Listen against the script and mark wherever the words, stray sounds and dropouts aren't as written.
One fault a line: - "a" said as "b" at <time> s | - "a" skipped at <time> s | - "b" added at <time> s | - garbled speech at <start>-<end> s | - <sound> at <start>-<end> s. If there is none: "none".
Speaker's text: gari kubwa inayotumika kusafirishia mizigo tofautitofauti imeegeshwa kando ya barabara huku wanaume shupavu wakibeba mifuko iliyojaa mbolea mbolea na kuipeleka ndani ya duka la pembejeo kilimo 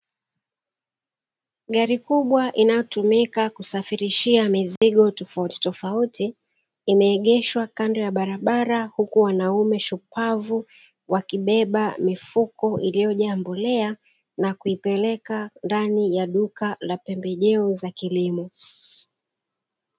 - dropout at 4.8-4.8 s
- "mbolea" skipped at 14.0 s
- "za" added at 17.7 s